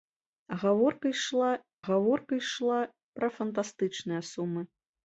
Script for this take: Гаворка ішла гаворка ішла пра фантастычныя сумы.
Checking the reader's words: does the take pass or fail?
pass